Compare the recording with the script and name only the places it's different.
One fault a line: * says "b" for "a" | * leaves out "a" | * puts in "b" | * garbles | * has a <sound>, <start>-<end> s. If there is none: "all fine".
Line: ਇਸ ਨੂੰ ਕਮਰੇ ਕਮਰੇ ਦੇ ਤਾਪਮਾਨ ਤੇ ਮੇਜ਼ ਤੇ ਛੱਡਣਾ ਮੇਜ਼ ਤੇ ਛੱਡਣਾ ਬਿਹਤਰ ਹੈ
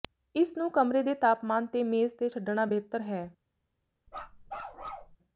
* leaves out "ਕਮਰੇ"
* leaves out "ਮੇਜ਼ ਤੇ ਛੱਡਣਾ"
* has a bark, 4.1-5.2 s